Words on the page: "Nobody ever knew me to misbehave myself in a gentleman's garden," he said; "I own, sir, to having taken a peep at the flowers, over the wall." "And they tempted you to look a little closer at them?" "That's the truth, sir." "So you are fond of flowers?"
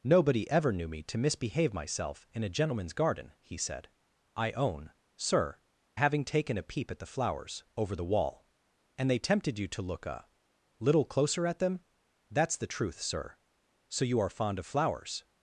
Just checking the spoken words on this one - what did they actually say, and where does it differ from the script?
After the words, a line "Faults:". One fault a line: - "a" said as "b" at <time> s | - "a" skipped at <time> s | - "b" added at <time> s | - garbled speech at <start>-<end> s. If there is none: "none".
"Nobody ever knew me to misbehave myself in a gentleman's garden," he said; "I own, sir, having taken a peep at the flowers, over the wall." "And they tempted you to look a little closer at them?" "That's the truth, sir." "So you are fond of flowers?"
Faults:
- "to" skipped at 5.6 s